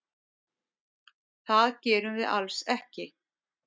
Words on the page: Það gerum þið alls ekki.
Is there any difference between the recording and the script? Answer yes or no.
yes